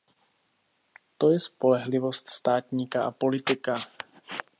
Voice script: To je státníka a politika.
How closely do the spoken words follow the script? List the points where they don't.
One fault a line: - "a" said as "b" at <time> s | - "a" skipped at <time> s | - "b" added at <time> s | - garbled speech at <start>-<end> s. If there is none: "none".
- "spolehlivost" added at 1.4 s